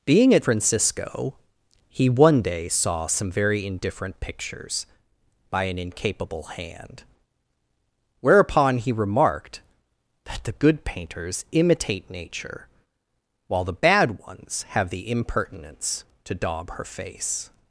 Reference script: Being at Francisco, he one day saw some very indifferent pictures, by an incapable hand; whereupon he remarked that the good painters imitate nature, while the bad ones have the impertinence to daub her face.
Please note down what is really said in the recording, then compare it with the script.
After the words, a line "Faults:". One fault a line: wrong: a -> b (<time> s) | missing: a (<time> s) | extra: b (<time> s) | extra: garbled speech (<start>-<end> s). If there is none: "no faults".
Being at Francisco, he one day saw some very indifferent pictures, by an incapable hand; whereupon he remarked that the good painters imitate nature, while the bad ones have the impertinence to daub her face.
Faults:
no faults